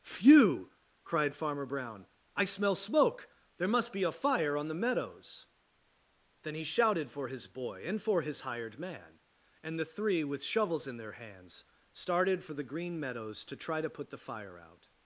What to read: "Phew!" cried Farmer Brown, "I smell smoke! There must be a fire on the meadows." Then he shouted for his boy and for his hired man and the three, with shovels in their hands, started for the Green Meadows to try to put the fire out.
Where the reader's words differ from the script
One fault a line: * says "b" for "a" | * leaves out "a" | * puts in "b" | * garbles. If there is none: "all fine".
all fine